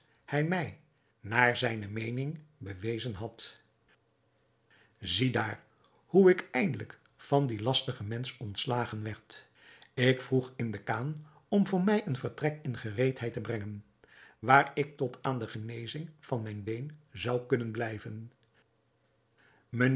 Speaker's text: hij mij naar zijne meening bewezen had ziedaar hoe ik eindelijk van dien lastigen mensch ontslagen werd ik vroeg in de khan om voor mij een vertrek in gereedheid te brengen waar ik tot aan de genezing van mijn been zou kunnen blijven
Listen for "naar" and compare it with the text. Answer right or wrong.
right